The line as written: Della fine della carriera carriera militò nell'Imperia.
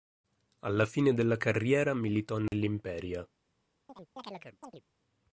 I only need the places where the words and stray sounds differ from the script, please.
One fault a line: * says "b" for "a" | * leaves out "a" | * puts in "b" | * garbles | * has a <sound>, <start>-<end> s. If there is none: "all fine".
* says "Alla" for "Della"
* leaves out "carriera"
* has a dropout, 2.5-2.5 s
* has a chirp, 3.9-4.8 s